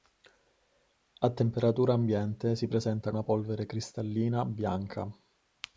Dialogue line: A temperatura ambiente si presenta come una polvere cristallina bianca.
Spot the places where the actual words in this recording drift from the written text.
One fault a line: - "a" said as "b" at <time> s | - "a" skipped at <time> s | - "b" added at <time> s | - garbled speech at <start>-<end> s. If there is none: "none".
- "come" skipped at 3.1 s